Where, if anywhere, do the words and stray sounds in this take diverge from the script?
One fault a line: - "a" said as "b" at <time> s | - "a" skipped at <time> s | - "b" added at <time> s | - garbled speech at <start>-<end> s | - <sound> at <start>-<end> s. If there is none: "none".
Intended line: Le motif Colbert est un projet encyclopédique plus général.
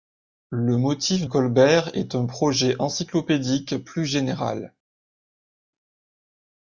none